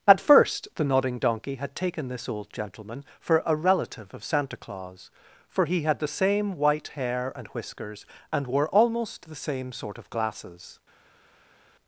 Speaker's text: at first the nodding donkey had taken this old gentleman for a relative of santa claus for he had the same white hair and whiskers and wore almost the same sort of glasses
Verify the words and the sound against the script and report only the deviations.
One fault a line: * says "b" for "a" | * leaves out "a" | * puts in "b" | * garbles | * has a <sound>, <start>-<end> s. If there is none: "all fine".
all fine